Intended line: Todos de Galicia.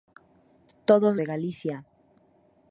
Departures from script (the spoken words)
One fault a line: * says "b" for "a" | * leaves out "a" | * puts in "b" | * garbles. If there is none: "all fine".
all fine